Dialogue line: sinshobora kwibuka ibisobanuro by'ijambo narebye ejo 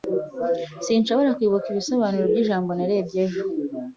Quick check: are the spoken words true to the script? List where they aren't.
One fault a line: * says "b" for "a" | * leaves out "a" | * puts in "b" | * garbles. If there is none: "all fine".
all fine